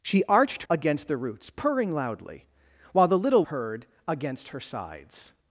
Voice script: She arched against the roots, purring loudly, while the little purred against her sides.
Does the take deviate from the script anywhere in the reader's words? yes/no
no